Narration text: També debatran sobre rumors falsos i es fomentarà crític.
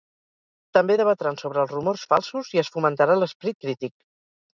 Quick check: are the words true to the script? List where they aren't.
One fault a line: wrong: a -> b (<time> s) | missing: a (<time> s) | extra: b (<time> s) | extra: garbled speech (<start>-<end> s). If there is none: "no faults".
extra: els (1.6 s)
extra: l'esperit (3.2 s)